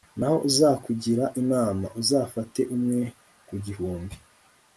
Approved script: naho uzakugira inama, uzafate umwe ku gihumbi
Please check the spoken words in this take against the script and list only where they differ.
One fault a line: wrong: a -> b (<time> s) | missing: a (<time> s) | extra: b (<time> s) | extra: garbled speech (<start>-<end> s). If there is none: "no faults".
no faults